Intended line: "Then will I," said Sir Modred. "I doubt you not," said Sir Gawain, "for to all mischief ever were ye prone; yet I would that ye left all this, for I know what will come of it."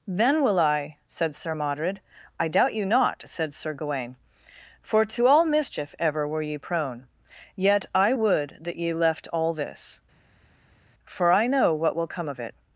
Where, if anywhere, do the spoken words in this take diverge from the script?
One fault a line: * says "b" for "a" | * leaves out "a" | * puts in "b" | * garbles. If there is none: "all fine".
all fine